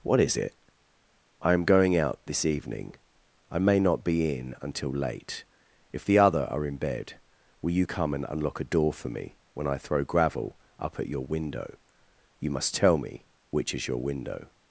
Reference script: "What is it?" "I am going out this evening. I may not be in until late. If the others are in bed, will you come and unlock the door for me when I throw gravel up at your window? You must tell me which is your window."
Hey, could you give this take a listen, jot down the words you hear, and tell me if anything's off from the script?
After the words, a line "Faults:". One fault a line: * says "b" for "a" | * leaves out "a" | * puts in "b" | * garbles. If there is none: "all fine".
"What is it?" "I am going out this evening. I may not be in until late. If the other are in bed, will you come and unlock a door for me when I throw gravel up at your window? You must tell me which is your window."
Faults:
* says "other" for "others"
* says "a" for "the"